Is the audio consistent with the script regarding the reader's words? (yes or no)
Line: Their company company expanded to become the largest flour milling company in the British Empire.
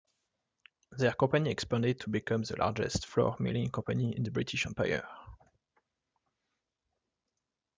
no